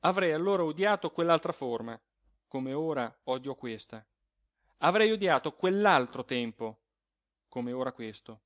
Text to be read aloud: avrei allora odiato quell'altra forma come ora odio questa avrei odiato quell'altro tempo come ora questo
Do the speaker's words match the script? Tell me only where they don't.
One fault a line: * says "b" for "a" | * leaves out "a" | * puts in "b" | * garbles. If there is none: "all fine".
all fine